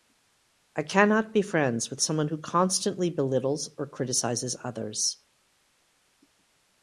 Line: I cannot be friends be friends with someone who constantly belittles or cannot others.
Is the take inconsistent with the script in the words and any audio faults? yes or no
yes